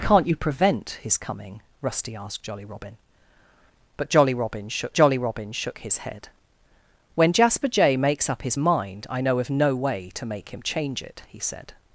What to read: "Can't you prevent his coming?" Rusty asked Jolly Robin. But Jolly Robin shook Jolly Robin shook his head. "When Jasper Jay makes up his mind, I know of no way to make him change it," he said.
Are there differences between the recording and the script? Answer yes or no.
no